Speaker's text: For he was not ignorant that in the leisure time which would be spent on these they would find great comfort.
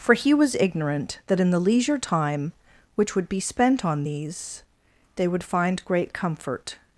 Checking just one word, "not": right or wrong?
wrong